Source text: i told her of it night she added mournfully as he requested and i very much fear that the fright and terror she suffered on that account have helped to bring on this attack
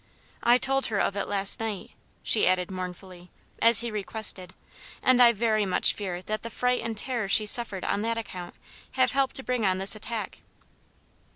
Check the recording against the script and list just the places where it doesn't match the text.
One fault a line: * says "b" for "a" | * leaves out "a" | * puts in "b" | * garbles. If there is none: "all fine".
* puts in "last"